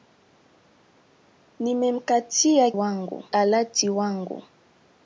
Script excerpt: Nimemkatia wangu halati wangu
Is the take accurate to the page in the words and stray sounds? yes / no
yes